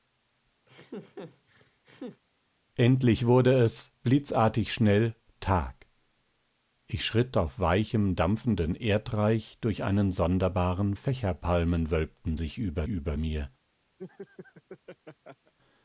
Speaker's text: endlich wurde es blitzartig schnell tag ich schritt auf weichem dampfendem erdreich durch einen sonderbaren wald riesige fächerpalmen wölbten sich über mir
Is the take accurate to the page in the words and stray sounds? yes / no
no